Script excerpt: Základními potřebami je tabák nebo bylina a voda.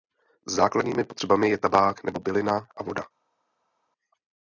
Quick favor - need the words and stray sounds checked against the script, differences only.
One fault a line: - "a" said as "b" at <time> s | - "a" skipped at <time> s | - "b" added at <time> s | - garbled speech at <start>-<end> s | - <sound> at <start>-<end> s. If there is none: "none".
none